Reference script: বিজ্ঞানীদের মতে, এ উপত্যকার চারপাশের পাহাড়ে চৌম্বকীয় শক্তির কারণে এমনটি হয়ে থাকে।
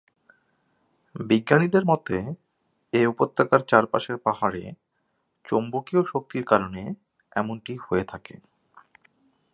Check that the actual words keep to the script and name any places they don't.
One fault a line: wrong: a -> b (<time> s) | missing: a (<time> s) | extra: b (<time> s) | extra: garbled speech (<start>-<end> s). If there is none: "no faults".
no faults